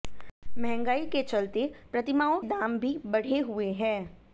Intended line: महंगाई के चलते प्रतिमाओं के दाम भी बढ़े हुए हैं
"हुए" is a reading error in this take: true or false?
false